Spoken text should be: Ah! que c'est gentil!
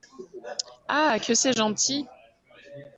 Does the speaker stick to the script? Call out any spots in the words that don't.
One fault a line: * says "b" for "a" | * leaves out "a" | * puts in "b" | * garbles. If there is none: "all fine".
all fine